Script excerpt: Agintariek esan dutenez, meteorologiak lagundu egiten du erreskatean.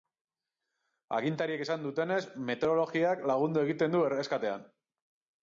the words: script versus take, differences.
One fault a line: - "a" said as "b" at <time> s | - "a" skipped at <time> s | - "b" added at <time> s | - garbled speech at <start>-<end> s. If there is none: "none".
none